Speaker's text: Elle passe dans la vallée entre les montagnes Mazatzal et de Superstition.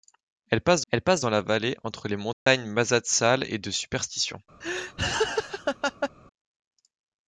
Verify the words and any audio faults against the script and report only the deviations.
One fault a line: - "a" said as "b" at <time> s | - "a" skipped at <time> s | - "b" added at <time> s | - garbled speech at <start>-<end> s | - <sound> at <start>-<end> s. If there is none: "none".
- "elle passe" added at 0.9 s
- dropout at 2.3-2.5 s
- laugh at 4.6-6.1 s